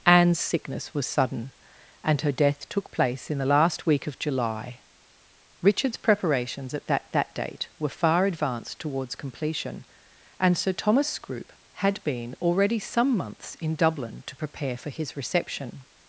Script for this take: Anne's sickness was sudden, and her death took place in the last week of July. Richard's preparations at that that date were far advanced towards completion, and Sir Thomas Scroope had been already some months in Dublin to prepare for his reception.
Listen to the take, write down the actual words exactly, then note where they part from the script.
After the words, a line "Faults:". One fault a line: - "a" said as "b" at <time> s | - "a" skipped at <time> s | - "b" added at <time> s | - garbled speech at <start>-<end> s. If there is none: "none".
Anne's sickness was sudden, and her death took place in the last week of July. Richard's preparations at that that date were far advanced towards completion, and Sir Thomas Scroope had been already some months in Dublin to prepare for his reception.
Faults:
none